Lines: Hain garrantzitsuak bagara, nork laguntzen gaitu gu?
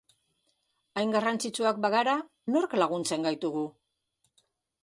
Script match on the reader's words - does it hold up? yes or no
yes